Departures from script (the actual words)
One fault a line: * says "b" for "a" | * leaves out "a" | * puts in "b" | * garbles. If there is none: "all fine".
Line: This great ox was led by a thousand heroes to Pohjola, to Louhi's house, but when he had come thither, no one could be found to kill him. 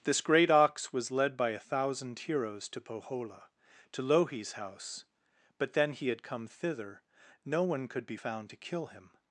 * says "then" for "when"